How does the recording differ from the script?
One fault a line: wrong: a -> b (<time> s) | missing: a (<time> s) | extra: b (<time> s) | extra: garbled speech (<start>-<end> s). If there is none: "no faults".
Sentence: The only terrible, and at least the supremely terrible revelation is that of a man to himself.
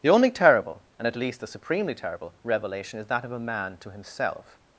no faults